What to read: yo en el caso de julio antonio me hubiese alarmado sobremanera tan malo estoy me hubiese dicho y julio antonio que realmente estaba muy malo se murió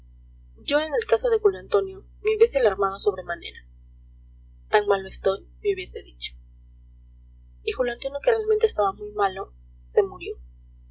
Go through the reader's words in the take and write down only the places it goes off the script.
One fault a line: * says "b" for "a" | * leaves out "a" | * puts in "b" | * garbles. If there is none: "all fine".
all fine